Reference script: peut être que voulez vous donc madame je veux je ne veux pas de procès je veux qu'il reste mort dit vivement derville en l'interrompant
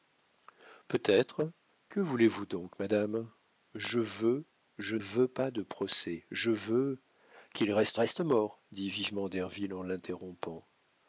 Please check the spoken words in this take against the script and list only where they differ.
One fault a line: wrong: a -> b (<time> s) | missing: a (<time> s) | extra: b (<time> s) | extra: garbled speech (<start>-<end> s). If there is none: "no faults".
missing: ne (5.0 s)
extra: reste (7.9 s)